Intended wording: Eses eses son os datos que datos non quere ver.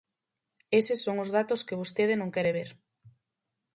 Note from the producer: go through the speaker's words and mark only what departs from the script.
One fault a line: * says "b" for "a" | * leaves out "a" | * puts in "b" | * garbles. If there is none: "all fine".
* leaves out "eses"
* says "vostede" for "datos"